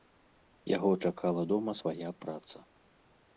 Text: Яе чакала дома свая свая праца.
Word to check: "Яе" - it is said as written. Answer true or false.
false